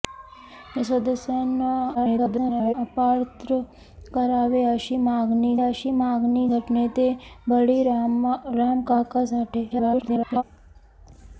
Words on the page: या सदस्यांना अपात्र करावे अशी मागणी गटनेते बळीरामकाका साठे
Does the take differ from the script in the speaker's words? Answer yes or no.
yes